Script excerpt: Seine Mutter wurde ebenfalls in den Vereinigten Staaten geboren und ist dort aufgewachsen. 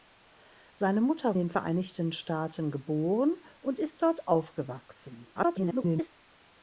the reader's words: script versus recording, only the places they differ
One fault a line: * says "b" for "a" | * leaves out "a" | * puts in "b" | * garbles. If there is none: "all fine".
* leaves out "wurde ebenfalls in"
* garbles